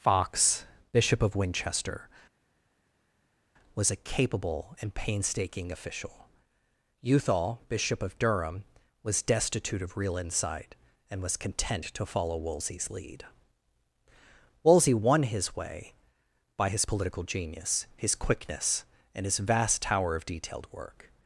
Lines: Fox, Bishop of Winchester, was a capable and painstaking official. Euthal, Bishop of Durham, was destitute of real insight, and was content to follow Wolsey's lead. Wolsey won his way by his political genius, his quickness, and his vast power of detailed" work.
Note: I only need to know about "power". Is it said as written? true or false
false